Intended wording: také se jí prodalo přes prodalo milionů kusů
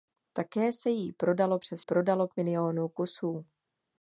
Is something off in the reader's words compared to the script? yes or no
no